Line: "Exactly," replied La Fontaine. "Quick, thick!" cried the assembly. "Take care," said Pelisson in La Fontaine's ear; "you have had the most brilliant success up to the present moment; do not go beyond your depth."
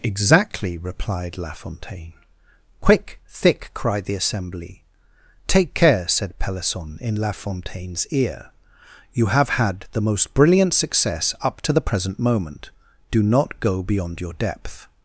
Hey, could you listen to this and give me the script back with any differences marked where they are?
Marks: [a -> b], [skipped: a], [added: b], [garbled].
"Exactly," replied La Fontaine. "Quick, thick!" cried the assembly. "Take care," said Pelisson in La Fontaine's ear; "you have had the most brilliant success up to the present moment; do not go beyond your depth."